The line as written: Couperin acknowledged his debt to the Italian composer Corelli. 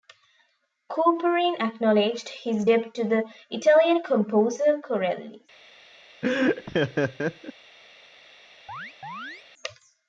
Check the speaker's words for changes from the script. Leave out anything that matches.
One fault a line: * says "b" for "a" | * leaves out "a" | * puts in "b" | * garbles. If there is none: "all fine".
all fine